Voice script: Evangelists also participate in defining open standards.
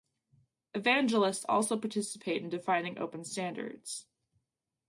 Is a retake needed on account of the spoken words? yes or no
no